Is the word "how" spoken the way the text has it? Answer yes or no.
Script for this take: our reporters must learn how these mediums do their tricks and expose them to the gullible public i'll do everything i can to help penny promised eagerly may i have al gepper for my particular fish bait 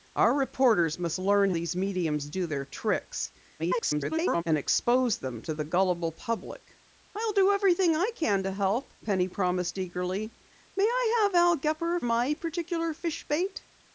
no